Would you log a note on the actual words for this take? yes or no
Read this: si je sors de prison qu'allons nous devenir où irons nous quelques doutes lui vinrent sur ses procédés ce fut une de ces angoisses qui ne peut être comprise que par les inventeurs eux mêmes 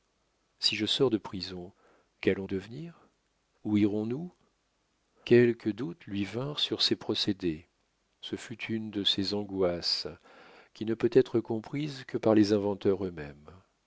yes